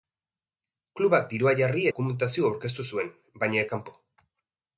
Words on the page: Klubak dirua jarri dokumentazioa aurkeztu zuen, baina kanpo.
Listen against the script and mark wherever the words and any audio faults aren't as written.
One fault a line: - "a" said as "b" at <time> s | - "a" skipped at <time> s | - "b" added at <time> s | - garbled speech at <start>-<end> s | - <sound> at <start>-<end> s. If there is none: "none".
none